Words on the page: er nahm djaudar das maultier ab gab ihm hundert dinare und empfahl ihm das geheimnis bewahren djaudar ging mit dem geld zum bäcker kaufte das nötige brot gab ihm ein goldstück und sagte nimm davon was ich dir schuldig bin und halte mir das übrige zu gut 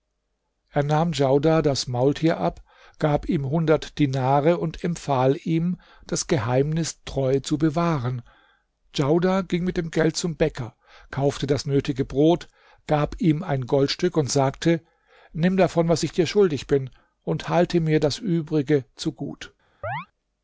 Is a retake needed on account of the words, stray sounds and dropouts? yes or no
yes